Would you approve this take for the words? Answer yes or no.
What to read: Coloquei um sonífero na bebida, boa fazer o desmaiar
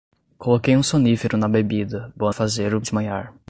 yes